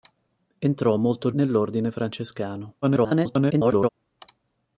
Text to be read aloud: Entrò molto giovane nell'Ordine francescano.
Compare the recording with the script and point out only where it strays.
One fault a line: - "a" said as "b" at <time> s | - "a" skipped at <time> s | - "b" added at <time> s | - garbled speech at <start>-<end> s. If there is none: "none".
- "giovane" skipped at 1.3 s
- garbled speech at 2.8-3.9 s